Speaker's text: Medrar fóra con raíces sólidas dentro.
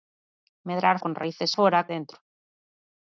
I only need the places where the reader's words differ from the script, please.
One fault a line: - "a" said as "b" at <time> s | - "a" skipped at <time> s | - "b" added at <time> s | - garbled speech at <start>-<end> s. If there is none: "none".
- "fóra" skipped at 1.0 s
- "sólidas" said as "fóra" at 1.5 s